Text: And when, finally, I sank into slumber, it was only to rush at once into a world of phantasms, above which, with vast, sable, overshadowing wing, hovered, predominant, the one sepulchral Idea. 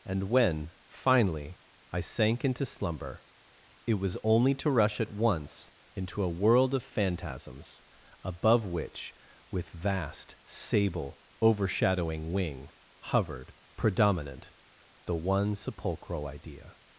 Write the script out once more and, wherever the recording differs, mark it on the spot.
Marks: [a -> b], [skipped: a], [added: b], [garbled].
And when, finally, I sank into slumber, it was only to rush at once into a world of phantasms, above which, with vast, sable, overshadowing wing, hovered, predominant, the one sepulchral Idea.